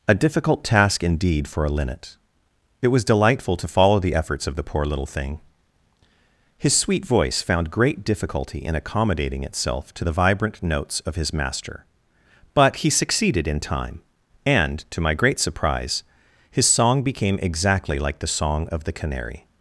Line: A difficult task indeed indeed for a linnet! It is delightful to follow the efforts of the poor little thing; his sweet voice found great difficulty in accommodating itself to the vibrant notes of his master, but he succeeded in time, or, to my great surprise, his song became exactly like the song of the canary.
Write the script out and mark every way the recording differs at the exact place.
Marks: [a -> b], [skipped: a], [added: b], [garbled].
A difficult task indeed [skipped: indeed] for a linnet! It [is -> was] delightful to follow the efforts of the poor little thing; his sweet voice found great difficulty in accommodating itself to the vibrant notes of his master, but he succeeded in time, [or, -> and] to my great surprise, his song became exactly like the song of the canary.